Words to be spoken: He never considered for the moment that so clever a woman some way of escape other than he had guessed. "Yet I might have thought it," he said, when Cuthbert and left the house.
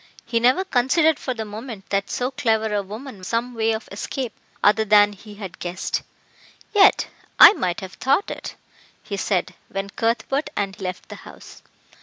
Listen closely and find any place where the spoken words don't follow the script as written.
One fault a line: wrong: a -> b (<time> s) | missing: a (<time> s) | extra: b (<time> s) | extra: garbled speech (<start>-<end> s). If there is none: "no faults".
no faults